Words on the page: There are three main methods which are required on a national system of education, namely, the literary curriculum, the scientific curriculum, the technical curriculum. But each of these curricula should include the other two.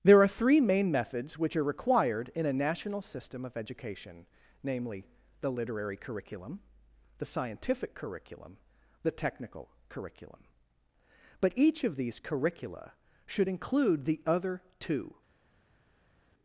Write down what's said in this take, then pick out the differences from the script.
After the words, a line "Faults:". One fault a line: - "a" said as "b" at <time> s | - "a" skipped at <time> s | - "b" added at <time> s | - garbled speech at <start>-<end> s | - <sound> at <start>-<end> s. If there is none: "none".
There are three main methods which are required in a national system of education, namely, the literary curriculum, the scientific curriculum, the technical curriculum. But each of these curricula should include the other two.
Faults:
- "on" said as "in" at 2.3 s